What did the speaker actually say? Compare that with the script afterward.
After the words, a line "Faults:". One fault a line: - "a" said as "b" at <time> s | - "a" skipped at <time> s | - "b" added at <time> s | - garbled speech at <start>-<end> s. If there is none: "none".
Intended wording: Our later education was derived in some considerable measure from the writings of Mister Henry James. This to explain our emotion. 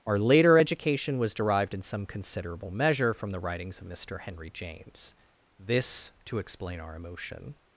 Our later education was derived in some considerable measure from the writings of Mister Henry James. This to explain our emotion.
Faults:
none